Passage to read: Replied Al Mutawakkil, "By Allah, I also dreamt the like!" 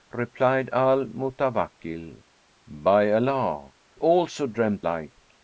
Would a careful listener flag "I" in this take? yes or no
yes